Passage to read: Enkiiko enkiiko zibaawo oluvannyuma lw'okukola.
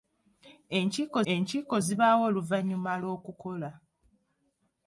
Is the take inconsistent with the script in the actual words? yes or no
no